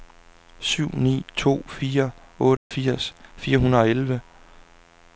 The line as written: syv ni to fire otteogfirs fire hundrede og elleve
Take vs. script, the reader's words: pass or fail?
pass